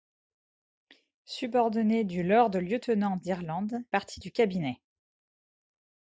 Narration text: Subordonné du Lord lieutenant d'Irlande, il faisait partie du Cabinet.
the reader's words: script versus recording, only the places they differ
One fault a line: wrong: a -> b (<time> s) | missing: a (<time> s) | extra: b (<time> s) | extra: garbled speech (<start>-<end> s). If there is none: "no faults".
missing: il faisait (3.8 s)